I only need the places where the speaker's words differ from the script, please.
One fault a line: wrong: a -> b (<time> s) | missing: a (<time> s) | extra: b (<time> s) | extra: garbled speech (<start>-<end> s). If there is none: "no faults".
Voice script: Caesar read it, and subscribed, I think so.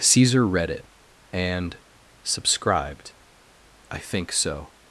no faults